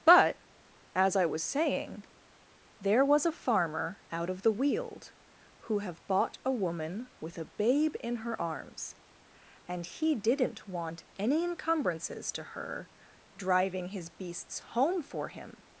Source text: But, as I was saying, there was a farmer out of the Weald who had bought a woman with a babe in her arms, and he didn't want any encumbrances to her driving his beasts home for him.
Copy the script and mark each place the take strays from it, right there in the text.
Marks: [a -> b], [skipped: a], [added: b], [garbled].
But, as I was saying, there was a farmer out of the Weald who [had -> have] bought a woman with a babe in her arms, and he didn't want any encumbrances to her driving his beasts home for him.